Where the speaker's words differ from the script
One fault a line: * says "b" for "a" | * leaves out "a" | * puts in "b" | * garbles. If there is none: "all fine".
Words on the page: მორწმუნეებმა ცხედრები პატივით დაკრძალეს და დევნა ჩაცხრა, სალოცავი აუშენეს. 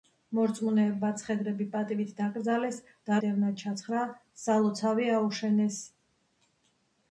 all fine